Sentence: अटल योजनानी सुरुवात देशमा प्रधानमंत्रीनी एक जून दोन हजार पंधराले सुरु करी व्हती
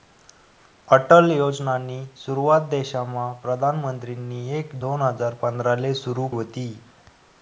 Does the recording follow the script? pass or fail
fail